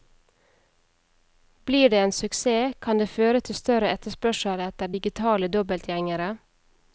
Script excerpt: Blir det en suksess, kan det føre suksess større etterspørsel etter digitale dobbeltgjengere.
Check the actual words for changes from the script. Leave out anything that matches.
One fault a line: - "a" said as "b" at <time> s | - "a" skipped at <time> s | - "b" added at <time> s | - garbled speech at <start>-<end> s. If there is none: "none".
- "suksess" said as "til" at 3.4 s